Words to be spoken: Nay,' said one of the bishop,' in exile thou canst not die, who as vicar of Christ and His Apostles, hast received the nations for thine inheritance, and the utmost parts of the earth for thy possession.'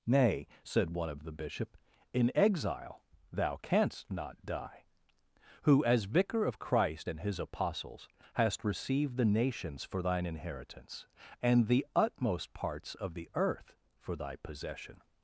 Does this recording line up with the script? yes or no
yes